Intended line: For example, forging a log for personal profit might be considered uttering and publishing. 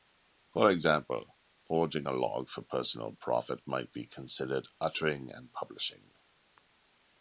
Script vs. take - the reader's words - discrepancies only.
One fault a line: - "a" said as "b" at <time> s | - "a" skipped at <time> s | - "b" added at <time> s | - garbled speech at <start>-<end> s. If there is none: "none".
none